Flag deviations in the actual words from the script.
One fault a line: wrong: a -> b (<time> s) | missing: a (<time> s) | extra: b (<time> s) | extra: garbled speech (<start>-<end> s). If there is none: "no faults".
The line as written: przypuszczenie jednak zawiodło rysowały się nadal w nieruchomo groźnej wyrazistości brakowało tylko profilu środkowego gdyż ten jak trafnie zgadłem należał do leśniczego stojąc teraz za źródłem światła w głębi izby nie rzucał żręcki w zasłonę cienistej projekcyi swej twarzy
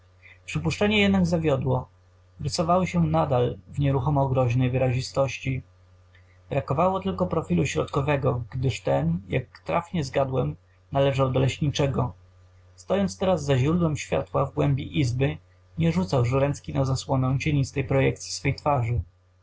wrong: w -> na (16.7 s)